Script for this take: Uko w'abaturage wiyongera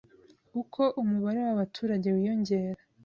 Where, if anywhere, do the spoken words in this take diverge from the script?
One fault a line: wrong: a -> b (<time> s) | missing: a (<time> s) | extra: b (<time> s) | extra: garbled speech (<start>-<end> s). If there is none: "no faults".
extra: umubare (1.0 s)